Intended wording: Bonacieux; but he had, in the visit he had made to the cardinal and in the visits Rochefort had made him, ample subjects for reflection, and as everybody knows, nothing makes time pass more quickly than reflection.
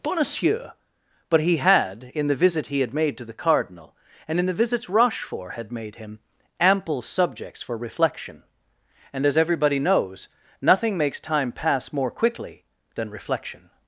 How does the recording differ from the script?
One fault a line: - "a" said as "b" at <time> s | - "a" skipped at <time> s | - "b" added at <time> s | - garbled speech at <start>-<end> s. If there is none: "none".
none